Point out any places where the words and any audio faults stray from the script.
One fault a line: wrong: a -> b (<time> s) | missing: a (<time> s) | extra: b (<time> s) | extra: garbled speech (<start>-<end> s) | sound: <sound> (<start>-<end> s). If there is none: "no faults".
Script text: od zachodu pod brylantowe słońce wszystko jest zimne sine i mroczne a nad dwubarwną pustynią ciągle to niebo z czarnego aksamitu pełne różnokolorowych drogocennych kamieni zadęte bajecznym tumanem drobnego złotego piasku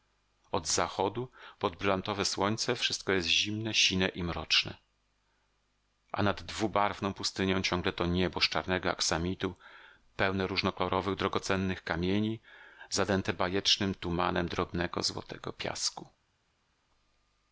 no faults